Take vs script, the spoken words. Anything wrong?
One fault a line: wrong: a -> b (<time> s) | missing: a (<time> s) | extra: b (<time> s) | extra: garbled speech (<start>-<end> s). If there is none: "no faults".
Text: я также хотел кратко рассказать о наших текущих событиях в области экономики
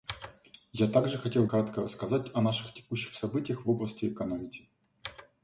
no faults